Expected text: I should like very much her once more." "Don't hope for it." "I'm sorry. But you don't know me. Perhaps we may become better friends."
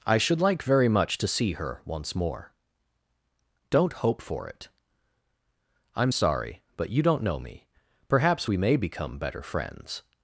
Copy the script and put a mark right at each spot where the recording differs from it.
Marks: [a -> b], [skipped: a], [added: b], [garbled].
I should like very much [added: to see] her once more." "Don't hope for it." "I'm sorry. But you don't know me. Perhaps we may become better friends."